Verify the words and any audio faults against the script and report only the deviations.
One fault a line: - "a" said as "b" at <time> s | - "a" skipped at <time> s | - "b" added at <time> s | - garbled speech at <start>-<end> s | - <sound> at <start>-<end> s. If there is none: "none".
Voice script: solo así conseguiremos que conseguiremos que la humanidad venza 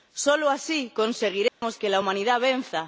- dropout at 1.5-1.6 s
- "conseguiremos que" skipped at 1.9 s